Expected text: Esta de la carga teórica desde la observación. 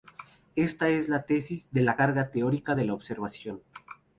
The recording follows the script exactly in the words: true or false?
false